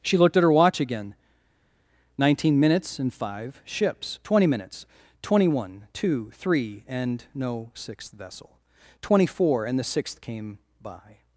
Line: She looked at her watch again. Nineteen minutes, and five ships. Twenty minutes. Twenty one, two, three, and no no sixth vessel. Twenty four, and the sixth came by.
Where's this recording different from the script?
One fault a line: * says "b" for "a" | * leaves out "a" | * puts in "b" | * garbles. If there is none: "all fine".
* leaves out "no"